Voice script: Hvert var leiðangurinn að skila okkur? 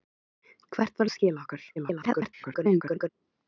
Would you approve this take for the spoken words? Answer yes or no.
no